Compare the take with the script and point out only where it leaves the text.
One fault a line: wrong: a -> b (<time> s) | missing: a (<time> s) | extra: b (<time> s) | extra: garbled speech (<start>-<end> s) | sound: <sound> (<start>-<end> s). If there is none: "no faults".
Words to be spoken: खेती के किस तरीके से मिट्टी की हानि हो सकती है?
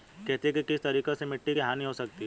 no faults